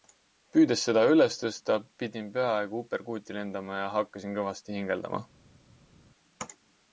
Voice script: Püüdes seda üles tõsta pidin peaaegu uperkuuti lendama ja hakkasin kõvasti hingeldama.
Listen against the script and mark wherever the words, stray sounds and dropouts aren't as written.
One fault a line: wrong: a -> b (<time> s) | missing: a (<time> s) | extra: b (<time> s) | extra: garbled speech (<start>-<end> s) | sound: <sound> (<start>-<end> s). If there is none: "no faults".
no faults